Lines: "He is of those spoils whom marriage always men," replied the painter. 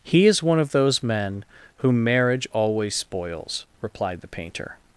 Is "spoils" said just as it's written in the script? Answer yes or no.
no